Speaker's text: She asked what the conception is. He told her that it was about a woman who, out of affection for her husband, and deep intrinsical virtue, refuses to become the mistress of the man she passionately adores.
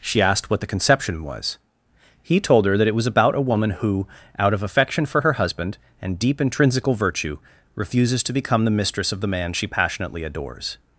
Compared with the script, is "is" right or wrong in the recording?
wrong